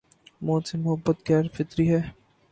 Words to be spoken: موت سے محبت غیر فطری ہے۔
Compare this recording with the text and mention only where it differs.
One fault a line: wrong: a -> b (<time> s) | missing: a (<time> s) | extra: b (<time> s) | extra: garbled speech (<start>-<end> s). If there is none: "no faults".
no faults